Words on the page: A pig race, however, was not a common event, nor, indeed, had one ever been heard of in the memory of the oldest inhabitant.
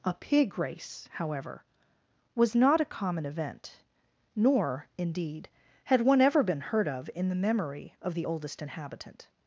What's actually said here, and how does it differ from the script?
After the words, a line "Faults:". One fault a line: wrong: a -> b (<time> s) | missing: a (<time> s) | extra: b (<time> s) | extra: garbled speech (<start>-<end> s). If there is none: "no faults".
A pig race, however, was not a common event, nor, indeed, had one ever been heard of in the memory of the oldest inhabitant.
Faults:
no faults